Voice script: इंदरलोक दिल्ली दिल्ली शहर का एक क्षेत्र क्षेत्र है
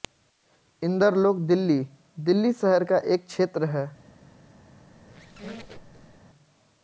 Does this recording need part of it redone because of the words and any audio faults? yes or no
yes